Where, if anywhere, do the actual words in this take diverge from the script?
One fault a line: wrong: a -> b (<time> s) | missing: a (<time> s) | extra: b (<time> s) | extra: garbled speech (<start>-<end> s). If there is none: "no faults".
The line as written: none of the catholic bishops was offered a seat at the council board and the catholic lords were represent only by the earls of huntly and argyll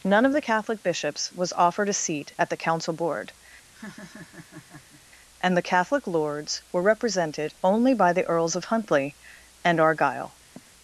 wrong: represent -> represented (6.8 s)